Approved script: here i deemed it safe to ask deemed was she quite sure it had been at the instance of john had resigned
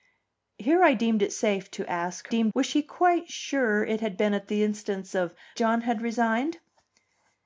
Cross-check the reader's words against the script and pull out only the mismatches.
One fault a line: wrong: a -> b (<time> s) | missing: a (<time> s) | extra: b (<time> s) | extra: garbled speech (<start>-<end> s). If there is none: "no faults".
no faults